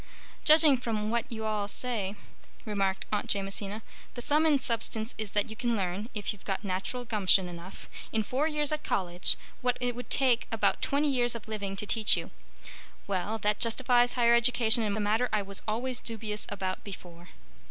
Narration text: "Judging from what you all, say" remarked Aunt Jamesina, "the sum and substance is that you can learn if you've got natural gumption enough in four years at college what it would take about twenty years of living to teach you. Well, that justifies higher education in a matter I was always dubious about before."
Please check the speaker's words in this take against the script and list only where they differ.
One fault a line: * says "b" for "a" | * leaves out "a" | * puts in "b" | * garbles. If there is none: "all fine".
all fine